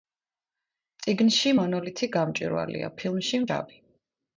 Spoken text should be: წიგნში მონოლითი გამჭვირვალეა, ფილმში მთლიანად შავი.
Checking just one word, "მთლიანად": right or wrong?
wrong